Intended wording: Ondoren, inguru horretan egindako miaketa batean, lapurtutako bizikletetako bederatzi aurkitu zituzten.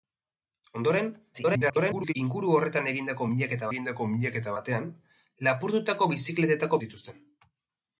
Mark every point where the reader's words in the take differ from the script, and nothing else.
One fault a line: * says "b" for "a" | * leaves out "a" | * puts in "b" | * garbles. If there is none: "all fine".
* garbles
* puts in "egindako miaketa"
* leaves out "bederatzi aurkitu"